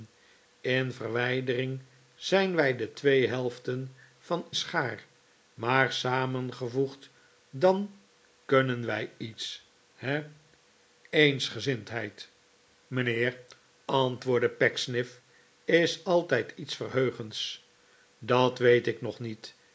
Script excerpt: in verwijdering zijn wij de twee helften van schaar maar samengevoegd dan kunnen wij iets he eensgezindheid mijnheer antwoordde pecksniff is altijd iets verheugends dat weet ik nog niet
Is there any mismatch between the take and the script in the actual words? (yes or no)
no